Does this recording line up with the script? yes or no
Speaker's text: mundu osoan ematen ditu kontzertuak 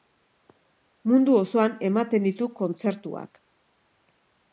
yes